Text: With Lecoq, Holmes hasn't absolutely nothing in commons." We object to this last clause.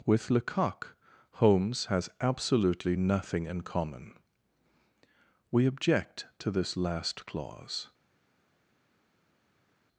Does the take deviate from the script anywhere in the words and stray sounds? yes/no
yes